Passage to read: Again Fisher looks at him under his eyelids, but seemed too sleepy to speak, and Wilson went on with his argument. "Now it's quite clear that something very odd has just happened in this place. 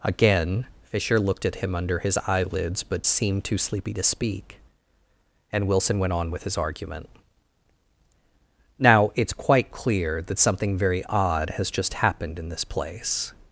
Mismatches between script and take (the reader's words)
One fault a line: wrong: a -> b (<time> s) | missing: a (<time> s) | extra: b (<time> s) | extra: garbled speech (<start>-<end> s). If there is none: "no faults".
wrong: looks -> looked (1.2 s)